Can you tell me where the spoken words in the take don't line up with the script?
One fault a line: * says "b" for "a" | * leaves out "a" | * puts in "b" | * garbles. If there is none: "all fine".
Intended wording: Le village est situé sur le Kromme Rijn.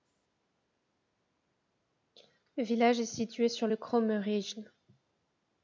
all fine